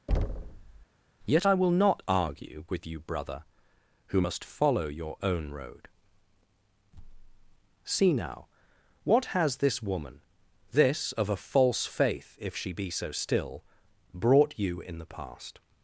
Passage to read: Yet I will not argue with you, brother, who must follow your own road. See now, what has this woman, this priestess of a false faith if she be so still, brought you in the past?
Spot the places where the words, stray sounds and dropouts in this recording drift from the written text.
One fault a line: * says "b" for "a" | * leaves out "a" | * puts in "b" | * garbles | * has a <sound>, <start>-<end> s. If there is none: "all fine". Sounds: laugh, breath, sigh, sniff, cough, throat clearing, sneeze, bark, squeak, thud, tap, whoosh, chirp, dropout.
* has a thud, 0.1-0.9 s
* leaves out "priestess"